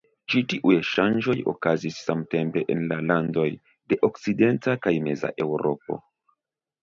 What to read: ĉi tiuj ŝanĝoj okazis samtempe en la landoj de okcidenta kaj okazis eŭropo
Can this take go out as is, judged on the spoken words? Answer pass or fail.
fail